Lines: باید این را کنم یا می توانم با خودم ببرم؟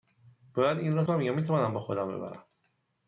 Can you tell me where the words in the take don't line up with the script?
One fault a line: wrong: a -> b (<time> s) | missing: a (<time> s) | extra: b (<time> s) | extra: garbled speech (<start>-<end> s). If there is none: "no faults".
no faults